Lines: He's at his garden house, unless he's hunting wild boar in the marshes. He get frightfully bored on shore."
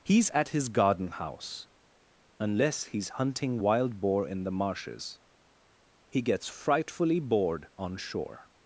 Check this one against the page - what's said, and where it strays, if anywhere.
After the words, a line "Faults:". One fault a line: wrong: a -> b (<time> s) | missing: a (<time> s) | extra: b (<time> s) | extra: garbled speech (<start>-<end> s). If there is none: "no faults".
He's at his garden house, unless he's hunting wild boar in the marshes. He gets frightfully bored on shore."
Faults:
wrong: get -> gets (6.2 s)